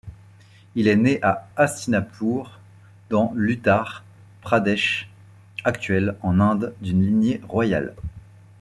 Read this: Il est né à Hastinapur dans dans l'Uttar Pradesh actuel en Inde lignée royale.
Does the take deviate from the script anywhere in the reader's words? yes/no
yes